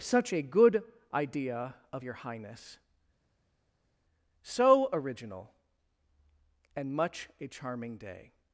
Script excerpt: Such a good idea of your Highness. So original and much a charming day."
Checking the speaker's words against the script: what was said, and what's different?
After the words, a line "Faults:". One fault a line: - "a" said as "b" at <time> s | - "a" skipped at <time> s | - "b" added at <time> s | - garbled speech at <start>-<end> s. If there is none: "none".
Such a good idea of your Highness. So original and much a charming day."
Faults:
none